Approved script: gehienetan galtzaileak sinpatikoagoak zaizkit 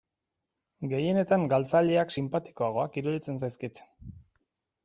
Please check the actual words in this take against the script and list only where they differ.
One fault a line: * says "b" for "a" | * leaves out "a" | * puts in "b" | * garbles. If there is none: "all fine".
* puts in "iruditzen"